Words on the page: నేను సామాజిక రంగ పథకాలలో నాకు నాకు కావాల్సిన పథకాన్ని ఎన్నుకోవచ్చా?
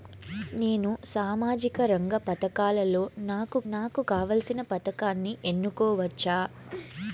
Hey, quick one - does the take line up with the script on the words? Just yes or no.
yes